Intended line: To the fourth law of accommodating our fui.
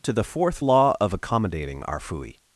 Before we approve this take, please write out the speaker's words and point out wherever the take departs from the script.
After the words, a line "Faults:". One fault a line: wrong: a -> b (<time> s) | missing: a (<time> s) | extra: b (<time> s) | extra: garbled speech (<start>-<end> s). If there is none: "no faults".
To the fourth law of accommodating our fui.
Faults:
no faults